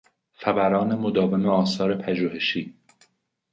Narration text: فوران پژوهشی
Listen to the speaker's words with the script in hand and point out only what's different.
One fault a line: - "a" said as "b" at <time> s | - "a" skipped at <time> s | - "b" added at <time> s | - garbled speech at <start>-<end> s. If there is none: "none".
- "مداوم آثار" added at 0.9 s